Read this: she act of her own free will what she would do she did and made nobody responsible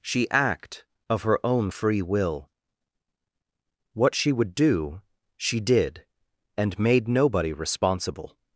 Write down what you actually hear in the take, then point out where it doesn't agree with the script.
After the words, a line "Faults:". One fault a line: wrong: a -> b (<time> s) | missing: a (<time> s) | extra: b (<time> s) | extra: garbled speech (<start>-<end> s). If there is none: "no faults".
she act of her own free will what she would do she did and made nobody responsible
Faults:
no faults